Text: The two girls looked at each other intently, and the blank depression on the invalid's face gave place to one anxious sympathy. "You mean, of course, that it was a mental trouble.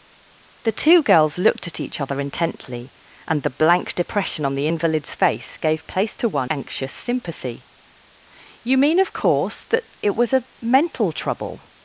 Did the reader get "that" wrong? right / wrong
right